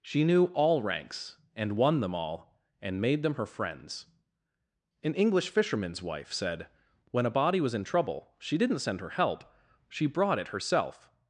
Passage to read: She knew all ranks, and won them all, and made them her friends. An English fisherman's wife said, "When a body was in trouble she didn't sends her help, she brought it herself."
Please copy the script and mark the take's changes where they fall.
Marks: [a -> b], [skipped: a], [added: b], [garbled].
She knew all ranks, and won them all, and made them her friends. An English fisherman's wife said, "When a body was in trouble she didn't [sends -> send] her help, she brought it herself."